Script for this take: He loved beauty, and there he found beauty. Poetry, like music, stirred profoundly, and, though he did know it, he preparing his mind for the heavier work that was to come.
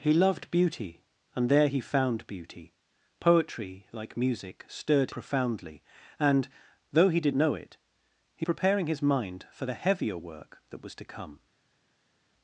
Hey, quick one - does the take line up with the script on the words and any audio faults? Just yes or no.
yes